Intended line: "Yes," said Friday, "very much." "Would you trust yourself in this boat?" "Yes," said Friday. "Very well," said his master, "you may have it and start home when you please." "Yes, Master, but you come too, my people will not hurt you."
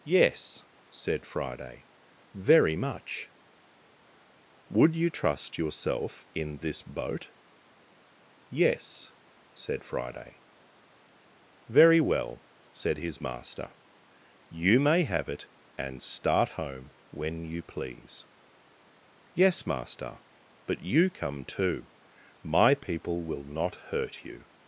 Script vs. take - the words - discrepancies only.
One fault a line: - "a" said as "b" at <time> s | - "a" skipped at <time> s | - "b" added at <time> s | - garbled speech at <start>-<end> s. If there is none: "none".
none